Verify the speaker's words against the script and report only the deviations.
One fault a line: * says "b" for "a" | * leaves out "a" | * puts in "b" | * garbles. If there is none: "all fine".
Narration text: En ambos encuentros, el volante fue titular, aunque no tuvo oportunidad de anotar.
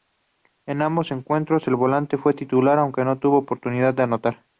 all fine